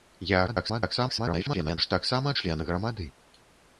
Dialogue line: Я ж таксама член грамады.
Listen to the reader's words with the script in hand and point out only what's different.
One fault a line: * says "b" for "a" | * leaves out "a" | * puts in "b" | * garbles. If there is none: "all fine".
* garbles